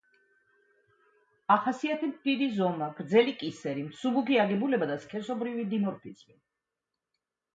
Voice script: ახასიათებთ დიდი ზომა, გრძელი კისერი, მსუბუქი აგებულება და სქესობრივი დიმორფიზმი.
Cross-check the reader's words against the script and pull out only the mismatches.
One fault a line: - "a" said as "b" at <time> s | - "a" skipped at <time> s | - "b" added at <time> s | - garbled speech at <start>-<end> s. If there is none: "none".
none